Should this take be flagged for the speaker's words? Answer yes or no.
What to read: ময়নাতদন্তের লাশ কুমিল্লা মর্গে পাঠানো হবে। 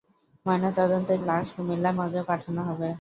no